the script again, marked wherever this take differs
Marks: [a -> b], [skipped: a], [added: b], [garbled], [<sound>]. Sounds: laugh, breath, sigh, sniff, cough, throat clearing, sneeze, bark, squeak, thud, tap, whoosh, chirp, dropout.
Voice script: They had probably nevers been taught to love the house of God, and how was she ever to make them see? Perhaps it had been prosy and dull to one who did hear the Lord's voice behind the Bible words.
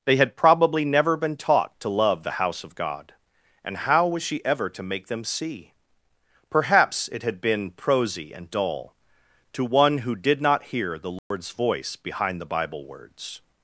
They had probably [nevers -> never] been taught to love the house of God, and how was she ever to make them see? Perhaps it had been prosy and dull to one who did [added: not] hear the Lord's [dropout] voice behind the Bible words.